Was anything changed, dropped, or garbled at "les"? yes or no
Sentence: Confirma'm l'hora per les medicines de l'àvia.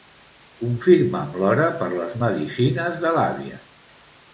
no